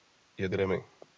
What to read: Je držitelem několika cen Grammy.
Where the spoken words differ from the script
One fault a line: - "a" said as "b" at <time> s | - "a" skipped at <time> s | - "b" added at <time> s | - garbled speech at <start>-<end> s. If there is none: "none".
- "držitelem několika cen" skipped at 0.5 s